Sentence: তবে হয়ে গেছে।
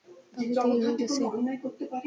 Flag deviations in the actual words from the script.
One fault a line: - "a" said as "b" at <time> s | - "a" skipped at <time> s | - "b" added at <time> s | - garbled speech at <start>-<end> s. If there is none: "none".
- "দেরি" added at 0.6 s